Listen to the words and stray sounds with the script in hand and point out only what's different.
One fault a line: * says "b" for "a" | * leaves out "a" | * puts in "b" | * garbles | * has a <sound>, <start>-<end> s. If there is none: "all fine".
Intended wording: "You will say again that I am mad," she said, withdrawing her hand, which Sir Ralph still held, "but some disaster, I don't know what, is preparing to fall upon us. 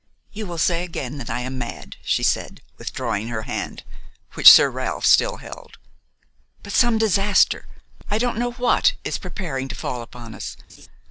* has a laugh, 10.7-10.9 s